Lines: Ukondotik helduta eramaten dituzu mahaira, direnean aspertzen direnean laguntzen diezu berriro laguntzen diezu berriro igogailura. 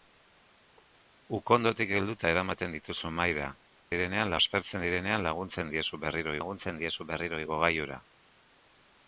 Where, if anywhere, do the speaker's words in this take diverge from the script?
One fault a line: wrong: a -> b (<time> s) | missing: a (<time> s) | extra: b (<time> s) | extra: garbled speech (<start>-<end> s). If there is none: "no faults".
no faults